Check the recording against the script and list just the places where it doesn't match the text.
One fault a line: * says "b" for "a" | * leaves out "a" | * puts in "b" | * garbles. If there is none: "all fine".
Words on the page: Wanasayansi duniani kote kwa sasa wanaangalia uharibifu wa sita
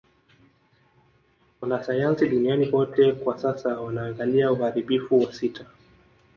all fine